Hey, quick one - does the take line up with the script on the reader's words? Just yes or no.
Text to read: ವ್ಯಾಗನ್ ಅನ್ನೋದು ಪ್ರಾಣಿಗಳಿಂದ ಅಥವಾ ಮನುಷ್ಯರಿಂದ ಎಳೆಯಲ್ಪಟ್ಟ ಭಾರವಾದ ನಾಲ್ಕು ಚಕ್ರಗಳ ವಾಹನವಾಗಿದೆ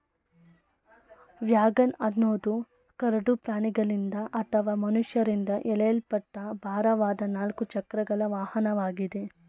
no